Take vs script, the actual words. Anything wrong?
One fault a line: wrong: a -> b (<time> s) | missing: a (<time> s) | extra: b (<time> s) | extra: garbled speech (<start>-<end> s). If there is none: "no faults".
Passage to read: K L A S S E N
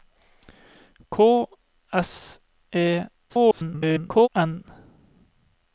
missing: L A S (1.4 s)
extra: garbled speech (3.3-4.3 s)